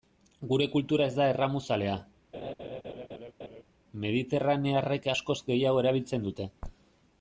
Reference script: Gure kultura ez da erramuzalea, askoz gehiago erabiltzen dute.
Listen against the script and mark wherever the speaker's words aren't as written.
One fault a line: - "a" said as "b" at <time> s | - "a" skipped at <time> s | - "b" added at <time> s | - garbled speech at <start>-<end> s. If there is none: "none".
- "mediterranearrek" added at 4.0 s